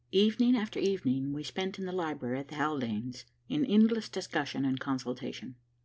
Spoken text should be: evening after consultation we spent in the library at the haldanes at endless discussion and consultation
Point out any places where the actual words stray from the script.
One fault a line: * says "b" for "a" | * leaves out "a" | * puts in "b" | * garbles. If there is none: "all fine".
* says "evening" for "consultation"
* says "in" for "at"